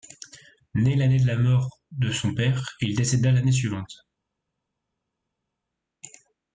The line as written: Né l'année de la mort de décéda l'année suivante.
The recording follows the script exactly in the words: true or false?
false